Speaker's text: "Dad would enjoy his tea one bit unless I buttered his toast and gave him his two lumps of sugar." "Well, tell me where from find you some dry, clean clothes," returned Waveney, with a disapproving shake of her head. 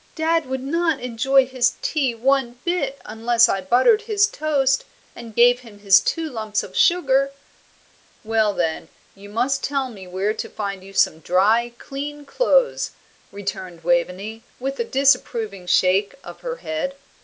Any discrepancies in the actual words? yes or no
yes